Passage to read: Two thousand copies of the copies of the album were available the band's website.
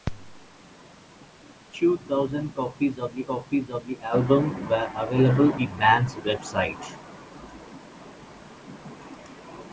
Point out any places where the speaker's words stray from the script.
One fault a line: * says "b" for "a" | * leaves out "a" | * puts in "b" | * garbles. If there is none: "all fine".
all fine